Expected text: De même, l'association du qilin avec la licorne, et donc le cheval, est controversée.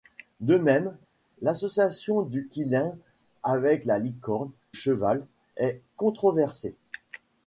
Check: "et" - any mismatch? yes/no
yes